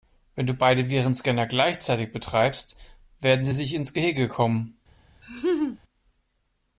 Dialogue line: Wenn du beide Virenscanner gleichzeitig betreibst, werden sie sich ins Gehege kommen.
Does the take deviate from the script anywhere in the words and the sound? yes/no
yes